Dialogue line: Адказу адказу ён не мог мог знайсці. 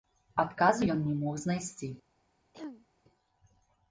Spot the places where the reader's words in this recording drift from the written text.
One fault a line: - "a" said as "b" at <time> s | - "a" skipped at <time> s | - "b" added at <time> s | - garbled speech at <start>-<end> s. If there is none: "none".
- "адказу" skipped at 0.9 s
- "мог" skipped at 1.4 s